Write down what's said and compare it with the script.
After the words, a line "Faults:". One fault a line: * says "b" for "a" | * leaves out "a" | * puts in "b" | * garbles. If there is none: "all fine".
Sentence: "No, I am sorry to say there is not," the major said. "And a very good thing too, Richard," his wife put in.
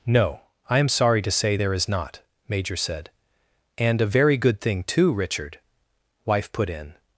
"No, I am sorry to say there is not," major said. "And a very good thing too, Richard," wife put in.
Faults:
* leaves out "the"
* leaves out "his"